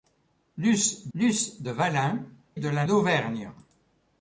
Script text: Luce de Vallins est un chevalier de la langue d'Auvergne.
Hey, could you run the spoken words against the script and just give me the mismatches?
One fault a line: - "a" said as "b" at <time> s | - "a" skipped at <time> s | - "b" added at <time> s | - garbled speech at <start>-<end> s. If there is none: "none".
- "luce" added at 1.1 s
- "est un chevalier" skipped at 2.2 s
- "langue" skipped at 2.9 s